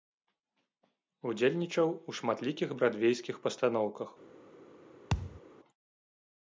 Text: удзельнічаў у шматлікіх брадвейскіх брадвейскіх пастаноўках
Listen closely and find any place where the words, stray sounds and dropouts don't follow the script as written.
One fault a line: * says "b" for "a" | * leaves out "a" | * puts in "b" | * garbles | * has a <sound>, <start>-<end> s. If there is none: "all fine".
* leaves out "брадвейскіх"
* has a thud, 5.1-5.4 s